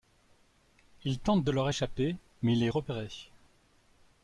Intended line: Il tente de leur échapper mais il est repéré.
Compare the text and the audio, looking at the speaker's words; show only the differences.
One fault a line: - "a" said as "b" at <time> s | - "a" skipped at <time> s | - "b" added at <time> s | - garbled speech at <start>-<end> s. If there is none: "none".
none